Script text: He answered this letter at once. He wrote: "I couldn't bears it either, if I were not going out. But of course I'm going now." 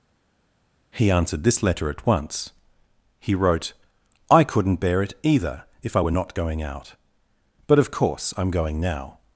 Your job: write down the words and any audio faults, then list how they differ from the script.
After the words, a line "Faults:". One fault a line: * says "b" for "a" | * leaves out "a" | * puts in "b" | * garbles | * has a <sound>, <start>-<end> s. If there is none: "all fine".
He answered this letter at once. He wrote: "I couldn't bear it either, if I were not going out. But of course I'm going now."
Faults:
* says "bear" for "bears"